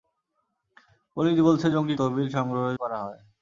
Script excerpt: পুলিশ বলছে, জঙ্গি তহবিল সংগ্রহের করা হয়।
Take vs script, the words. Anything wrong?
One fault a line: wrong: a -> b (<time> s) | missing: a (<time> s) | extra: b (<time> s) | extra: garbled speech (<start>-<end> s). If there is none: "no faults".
no faults